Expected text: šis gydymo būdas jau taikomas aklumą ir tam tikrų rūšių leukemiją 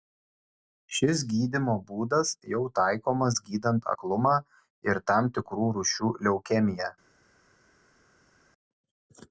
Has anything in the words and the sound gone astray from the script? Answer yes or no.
yes